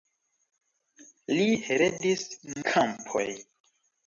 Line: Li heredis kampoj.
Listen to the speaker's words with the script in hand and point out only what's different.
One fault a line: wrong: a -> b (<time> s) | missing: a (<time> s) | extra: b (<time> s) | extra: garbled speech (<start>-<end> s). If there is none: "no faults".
no faults